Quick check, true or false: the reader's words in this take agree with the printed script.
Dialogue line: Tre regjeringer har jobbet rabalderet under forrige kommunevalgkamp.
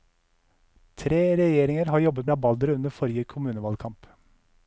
true